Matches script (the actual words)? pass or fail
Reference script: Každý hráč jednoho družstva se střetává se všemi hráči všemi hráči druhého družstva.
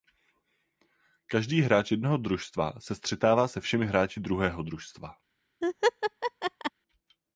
fail